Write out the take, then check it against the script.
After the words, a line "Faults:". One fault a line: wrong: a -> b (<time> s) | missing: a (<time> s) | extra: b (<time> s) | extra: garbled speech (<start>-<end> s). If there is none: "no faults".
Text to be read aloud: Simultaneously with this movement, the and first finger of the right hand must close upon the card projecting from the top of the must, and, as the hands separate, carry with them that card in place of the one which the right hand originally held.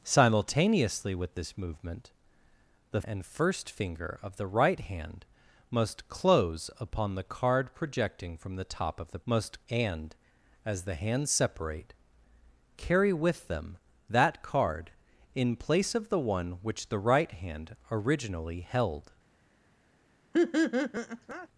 Simultaneously with this movement, the and first finger of the right hand must close upon the card projecting from the top of the must, and, as the hands separate, carry with them that card in place of the one which the right hand originally held.
Faults:
no faults